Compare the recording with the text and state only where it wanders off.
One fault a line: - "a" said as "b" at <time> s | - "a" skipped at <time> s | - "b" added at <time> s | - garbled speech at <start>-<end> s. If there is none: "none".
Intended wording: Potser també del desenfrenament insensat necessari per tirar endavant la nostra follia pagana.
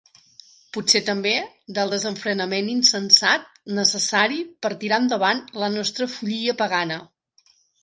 none